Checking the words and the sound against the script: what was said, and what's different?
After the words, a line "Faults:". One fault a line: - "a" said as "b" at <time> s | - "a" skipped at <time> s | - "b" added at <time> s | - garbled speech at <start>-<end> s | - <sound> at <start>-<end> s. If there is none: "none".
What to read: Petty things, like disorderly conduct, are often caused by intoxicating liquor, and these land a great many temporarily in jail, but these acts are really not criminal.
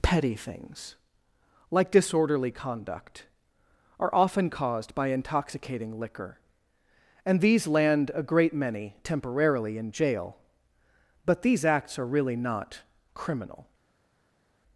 Petty things, like disorderly conduct, are often caused by intoxicating liquor, and these land a great many temporarily in jail, but these acts are really not criminal.
Faults:
none